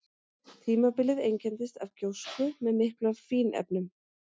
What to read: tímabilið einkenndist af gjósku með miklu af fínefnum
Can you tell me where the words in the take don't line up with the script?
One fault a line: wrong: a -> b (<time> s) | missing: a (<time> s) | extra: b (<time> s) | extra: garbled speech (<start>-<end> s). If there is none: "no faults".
no faults